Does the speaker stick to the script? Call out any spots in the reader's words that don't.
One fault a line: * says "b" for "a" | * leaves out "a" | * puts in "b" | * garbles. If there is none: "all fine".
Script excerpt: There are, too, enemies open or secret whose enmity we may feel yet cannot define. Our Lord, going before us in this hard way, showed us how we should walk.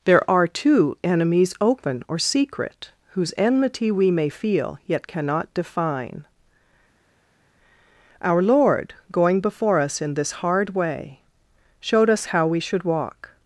all fine